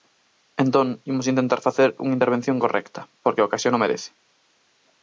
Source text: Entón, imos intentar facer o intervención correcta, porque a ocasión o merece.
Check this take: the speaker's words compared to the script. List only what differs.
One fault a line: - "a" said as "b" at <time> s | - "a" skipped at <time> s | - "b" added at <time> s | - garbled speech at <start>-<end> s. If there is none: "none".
- "o" said as "unha" at 2.0 s